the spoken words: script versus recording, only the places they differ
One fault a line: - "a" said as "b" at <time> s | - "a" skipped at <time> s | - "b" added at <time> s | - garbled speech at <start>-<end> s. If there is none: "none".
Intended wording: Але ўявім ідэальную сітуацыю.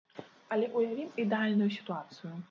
none